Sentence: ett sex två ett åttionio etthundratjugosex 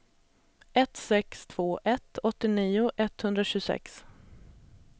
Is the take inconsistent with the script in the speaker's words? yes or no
no